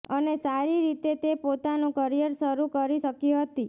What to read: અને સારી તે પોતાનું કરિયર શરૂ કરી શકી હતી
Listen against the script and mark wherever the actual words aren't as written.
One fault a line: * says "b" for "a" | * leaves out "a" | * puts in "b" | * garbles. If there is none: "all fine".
* puts in "રીતે"